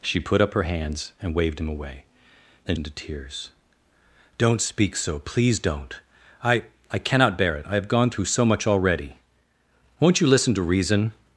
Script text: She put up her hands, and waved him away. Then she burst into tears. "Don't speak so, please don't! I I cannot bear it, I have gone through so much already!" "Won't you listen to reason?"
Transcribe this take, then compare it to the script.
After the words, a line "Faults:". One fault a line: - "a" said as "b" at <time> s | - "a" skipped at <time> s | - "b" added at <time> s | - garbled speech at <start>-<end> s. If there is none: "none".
She put up her hands, and waved him away. Then into tears. "Don't speak so, please don't! I I cannot bear it, I have gone through so much already!" "Won't you listen to reason?"
Faults:
- "she burst" skipped at 2.8 s